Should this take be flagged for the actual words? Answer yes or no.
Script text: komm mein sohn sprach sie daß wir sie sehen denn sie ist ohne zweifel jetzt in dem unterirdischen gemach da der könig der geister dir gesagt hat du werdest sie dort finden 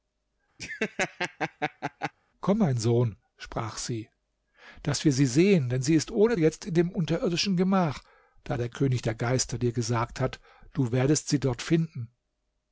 yes